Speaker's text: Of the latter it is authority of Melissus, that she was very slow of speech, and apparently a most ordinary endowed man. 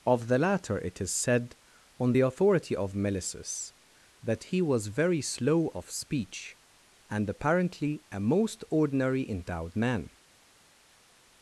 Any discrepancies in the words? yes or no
yes